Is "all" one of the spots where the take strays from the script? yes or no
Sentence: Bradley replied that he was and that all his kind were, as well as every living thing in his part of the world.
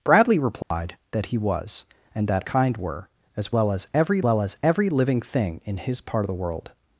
yes